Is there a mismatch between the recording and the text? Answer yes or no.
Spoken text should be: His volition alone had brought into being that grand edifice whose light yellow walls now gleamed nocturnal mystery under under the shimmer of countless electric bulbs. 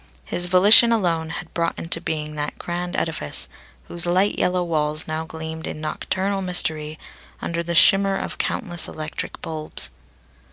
yes